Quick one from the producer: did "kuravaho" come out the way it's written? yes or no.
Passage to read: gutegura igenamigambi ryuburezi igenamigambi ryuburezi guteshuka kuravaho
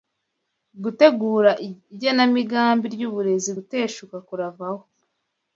yes